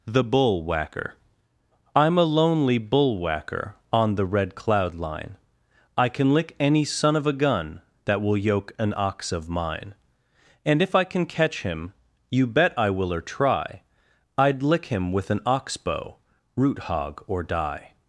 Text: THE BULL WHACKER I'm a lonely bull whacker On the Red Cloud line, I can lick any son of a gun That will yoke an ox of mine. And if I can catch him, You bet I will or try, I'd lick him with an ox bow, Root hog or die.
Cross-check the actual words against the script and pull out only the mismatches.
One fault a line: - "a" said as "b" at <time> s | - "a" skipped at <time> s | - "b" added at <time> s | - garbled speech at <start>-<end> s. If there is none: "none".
none